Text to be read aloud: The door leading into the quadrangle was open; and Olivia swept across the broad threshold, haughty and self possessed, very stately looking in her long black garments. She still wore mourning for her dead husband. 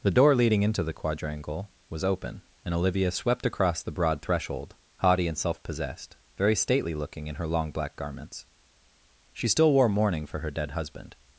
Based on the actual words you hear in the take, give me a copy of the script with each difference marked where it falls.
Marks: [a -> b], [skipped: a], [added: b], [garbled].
The door leading into the quadrangle was open; and Olivia swept across the broad threshold, haughty and self possessed, very stately looking in her long black garments. She still wore mourning for her dead husband.